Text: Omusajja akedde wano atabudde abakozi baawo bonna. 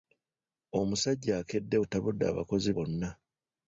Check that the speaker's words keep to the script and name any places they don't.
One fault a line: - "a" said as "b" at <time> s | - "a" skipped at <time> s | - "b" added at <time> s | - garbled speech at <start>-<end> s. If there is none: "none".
- "wano" skipped at 1.8 s
- "baawo" skipped at 2.7 s